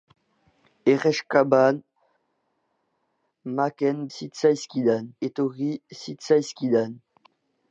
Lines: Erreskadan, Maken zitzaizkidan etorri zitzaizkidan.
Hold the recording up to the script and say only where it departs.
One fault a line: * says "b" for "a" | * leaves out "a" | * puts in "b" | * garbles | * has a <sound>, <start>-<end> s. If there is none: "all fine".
all fine